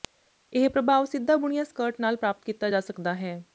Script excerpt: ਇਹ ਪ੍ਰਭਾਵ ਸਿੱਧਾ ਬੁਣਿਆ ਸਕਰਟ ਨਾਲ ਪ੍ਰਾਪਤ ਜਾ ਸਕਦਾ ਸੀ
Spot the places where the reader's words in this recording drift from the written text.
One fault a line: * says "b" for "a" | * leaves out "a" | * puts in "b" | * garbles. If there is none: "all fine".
* puts in "ਕੀਤਾ"
* says "ਹੈ" for "ਸੀ"